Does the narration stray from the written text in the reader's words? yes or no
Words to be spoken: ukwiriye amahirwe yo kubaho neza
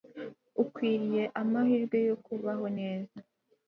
no